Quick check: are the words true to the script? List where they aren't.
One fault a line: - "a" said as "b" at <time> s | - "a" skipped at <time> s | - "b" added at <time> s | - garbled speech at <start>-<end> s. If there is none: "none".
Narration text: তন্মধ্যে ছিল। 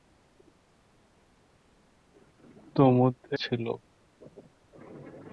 none